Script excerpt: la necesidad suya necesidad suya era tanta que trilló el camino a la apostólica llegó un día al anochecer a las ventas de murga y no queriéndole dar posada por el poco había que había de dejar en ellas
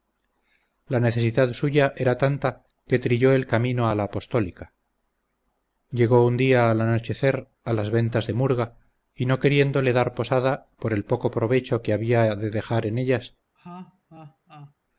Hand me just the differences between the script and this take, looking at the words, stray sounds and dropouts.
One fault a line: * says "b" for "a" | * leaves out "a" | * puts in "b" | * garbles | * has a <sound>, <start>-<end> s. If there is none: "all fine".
* leaves out "necesidad suya"
* says "provecho" for "había"
* has a laugh, 13.6-14.7 s